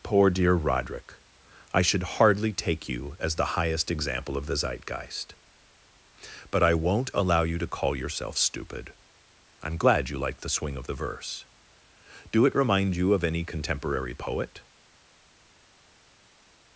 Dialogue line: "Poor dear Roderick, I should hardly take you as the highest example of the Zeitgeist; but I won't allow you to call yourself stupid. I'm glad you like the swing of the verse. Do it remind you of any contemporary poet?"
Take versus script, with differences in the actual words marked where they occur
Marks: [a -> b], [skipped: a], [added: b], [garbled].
"Poor dear Roderick, I should hardly take you as the highest example of the Zeitgeist; but I won't allow you to call yourself stupid. I'm glad you like the swing of the verse. Do it remind you of any contemporary poet?"